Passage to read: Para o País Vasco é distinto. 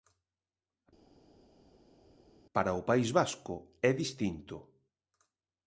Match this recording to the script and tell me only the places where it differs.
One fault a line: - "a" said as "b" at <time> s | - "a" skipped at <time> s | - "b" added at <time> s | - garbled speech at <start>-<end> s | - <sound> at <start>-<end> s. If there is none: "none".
none